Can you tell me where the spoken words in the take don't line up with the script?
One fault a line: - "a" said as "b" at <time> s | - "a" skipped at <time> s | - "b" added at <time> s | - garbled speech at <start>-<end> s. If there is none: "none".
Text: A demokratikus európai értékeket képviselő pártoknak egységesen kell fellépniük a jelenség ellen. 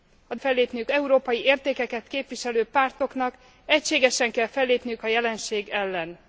- "demokratikus" said as "fellépniük" at 0.3 s